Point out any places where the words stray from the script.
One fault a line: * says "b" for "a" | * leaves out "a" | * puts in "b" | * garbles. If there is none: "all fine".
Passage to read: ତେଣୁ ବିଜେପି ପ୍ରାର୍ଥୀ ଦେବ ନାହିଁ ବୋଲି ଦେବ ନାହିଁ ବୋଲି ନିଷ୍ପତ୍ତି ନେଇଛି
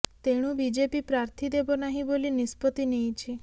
* leaves out "ଦେବ ନାହିଁ ବୋଲି"